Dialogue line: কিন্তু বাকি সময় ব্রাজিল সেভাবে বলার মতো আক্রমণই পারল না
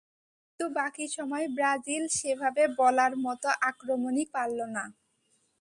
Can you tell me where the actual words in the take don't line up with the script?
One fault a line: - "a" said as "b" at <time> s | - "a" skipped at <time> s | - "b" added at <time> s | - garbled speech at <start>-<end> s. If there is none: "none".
none